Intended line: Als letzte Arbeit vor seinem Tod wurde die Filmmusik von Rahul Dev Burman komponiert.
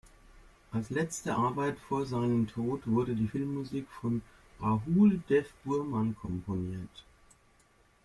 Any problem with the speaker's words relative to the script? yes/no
no